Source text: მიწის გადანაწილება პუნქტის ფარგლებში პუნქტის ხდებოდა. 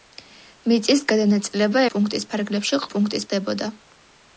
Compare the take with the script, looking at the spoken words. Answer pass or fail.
pass